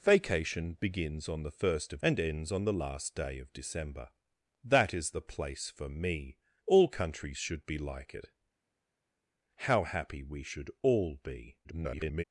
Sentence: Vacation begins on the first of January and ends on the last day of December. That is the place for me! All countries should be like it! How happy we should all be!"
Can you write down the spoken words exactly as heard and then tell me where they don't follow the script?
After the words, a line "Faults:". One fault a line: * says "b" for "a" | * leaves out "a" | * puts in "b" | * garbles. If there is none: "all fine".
Vacation begins on the first of And ends on the last day of December. That is the place for me! All countries should be like it! How happy we should all be!" [garbled]
Faults:
* leaves out "January"
* garbles